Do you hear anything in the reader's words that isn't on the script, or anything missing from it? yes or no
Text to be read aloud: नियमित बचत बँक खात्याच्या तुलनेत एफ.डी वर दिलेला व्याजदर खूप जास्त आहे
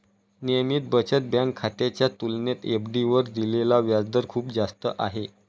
no